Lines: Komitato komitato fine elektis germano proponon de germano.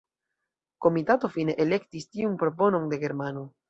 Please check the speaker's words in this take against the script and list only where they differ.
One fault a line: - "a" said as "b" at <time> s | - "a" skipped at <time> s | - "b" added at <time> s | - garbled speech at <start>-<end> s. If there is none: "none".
- "komitato" skipped at 1.3 s
- "germano" said as "tiun" at 2.1 s